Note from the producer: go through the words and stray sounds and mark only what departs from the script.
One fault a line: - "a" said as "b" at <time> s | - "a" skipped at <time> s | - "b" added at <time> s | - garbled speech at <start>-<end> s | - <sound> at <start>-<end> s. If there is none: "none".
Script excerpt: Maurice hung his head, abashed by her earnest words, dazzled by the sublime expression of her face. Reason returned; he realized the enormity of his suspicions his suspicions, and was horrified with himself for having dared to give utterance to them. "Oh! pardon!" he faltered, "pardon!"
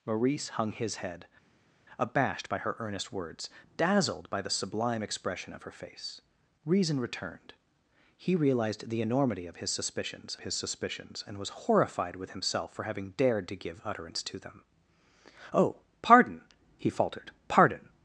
none